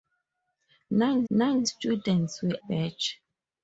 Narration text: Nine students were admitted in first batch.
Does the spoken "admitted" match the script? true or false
false